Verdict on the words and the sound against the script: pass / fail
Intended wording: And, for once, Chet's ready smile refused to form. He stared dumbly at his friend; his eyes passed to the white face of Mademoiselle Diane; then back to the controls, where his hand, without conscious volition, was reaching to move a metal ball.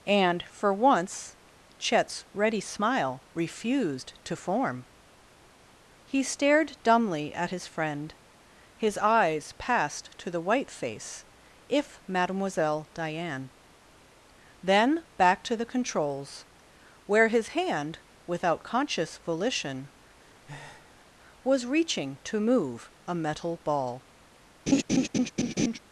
fail